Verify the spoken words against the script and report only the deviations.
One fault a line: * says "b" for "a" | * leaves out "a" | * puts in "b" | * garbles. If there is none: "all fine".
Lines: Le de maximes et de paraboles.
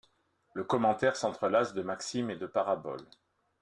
* puts in "commentaire s'entrelace"